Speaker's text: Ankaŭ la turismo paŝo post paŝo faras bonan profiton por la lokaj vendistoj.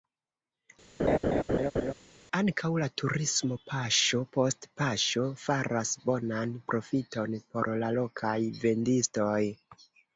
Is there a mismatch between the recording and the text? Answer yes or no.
no